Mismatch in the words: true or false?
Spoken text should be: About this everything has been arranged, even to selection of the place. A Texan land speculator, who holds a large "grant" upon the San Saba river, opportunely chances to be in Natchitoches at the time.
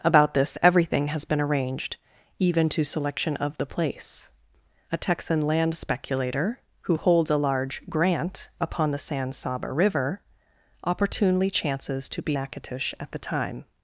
true